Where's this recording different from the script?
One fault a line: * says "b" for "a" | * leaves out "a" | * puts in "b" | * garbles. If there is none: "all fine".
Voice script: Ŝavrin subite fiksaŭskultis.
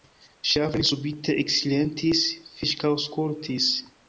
* puts in "eksilentis"